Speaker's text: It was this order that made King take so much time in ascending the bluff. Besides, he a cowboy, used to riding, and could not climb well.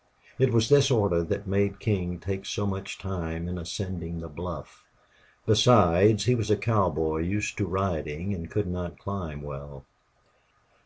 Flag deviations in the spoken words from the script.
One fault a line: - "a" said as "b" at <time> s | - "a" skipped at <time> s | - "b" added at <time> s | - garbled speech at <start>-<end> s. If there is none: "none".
- "was" added at 6.4 s